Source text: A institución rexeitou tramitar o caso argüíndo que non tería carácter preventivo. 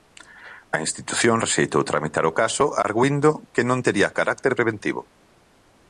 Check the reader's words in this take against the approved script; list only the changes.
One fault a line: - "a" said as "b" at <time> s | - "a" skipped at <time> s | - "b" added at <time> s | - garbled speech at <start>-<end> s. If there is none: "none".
none